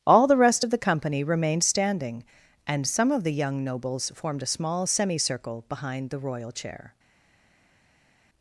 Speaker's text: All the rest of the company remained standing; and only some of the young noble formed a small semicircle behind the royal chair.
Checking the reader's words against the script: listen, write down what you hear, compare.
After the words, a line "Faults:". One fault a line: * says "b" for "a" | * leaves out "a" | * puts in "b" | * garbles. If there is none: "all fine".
All the rest of the company remained standing; and some of the young nobles formed a small semicircle behind the royal chair.
Faults:
* leaves out "only"
* says "nobles" for "noble"